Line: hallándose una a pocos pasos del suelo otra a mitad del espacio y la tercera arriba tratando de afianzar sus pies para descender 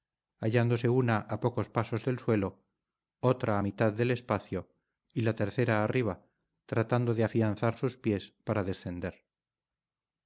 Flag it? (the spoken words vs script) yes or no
no